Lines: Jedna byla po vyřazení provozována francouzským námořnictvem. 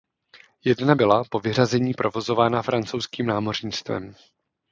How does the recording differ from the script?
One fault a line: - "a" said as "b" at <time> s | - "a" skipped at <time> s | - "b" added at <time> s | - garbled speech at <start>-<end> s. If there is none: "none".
none